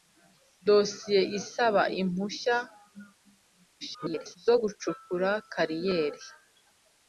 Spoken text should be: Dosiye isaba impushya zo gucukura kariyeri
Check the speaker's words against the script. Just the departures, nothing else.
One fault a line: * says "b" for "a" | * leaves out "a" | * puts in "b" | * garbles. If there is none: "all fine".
* garbles